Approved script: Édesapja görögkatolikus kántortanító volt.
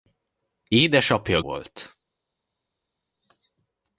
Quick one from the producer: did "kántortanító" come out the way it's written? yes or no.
no